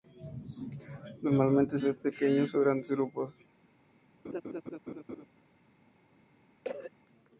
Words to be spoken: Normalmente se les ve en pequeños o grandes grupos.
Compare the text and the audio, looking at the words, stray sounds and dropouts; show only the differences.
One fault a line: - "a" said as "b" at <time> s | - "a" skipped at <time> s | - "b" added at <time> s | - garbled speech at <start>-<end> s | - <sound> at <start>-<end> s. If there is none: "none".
- "se les" skipped at 1.8 s
- laugh at 4.2-5.3 s
- cough at 6.6-6.9 s